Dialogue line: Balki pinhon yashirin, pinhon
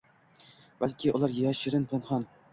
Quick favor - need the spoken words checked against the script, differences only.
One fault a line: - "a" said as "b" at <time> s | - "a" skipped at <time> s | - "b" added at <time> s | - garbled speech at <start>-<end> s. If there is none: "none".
- "pinhon" said as "ular" at 1.2 s